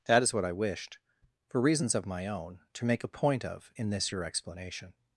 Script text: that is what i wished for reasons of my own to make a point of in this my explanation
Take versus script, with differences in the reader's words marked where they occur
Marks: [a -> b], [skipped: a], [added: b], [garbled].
that is what i wished for reasons of my own to make a point of in this [my -> your] explanation